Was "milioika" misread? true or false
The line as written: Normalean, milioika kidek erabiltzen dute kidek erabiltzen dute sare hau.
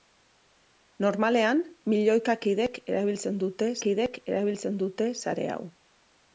false